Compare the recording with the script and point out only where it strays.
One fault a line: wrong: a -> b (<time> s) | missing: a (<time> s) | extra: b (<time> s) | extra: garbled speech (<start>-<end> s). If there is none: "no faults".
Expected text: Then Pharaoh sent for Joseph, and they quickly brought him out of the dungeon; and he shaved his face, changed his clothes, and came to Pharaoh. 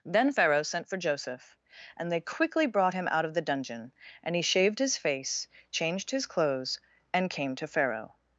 no faults